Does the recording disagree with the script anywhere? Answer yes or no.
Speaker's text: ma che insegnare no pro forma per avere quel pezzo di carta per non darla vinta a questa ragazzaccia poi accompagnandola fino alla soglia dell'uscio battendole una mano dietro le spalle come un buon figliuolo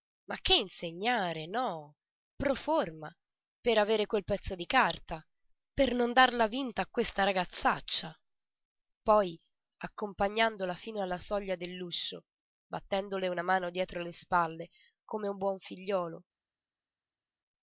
no